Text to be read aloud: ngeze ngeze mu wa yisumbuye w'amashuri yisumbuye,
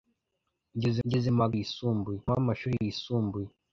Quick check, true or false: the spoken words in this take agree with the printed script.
true